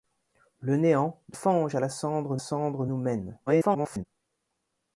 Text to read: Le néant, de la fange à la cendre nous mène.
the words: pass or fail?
fail